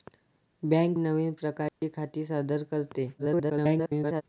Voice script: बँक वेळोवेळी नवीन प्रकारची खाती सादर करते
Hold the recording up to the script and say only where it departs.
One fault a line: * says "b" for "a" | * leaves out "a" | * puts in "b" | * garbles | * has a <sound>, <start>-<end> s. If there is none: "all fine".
* leaves out "वेळोवेळी"
* has a dropout, 1.7-1.8 s
* garbles